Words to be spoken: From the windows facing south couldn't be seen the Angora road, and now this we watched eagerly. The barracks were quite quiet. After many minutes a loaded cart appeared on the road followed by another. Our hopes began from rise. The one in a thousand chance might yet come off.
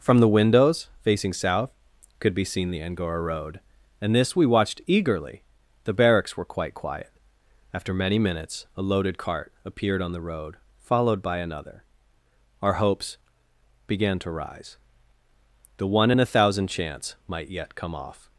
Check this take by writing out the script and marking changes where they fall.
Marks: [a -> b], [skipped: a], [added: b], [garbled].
From the windows facing south [couldn't -> could] be seen the Angora road, and [skipped: now] this we watched eagerly. The barracks were quite quiet. After many minutes a loaded cart appeared on the road followed by another. Our hopes began [from -> to] rise. The one in a thousand chance might yet come off.